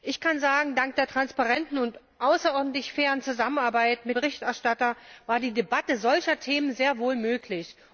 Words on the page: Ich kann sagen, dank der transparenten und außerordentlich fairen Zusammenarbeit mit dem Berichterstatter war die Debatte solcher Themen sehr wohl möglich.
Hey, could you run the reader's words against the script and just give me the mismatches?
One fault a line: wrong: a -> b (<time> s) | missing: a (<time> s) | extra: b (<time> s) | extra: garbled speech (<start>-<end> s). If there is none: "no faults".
missing: dem (4.2 s)